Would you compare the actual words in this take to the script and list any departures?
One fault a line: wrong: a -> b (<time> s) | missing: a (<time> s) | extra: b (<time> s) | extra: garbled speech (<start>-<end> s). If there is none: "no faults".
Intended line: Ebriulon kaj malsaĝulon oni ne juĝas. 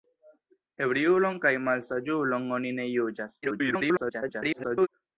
extra: garbled speech (3.4-4.9 s)